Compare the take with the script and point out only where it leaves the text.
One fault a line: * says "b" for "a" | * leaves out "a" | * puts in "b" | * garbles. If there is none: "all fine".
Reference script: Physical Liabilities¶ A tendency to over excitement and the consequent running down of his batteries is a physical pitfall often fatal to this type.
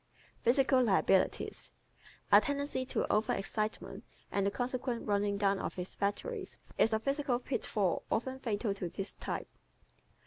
all fine